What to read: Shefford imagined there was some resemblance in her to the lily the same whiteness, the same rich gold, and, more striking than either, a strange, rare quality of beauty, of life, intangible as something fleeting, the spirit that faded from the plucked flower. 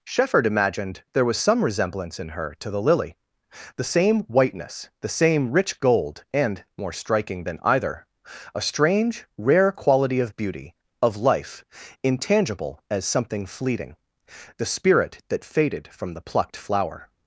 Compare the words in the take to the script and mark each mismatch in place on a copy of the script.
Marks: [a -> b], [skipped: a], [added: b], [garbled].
Shefford imagined there was some resemblance in her to the lily the same whiteness, the same rich gold, and, more striking than either, a strange, rare quality of beauty, of life, intangible as something fleeting, the spirit that faded from the plucked flower.